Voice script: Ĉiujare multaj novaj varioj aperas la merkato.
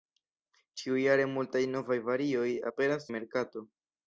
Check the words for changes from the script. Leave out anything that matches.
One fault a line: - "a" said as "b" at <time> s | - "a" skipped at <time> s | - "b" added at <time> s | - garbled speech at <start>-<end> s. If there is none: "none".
none